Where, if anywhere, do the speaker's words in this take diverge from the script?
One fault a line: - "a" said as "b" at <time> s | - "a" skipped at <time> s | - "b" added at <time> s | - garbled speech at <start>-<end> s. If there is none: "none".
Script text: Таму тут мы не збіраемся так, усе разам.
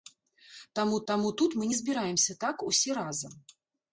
- "таму" added at 1.1 s